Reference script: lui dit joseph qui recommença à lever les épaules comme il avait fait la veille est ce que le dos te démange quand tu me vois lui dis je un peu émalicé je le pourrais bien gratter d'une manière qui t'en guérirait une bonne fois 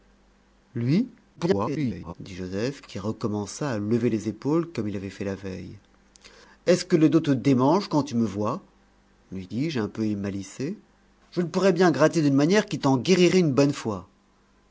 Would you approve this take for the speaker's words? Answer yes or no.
no